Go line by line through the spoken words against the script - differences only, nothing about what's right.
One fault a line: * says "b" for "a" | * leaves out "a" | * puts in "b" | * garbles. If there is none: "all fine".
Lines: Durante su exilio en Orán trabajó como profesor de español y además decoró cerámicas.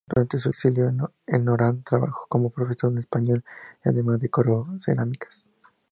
all fine